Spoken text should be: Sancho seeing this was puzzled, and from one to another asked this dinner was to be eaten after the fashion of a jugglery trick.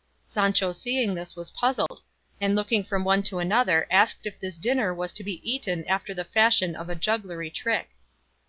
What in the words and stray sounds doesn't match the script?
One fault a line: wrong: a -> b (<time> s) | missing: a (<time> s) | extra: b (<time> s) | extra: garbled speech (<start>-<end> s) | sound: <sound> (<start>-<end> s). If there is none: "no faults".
sound: dropout (1.9-1.9 s)
extra: looking (2.5 s)
extra: if (4.2 s)